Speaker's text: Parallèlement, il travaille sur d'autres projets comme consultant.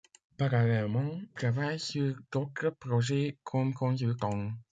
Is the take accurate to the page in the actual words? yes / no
no